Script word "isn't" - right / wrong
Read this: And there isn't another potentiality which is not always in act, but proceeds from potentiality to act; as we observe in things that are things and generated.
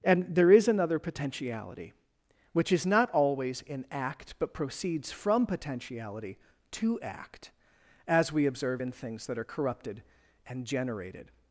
wrong